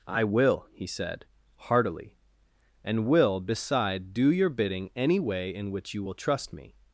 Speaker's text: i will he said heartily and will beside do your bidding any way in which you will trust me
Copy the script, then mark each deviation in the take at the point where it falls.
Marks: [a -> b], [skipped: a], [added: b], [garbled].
i will he said heartily and will beside do your bidding any way in which you will trust me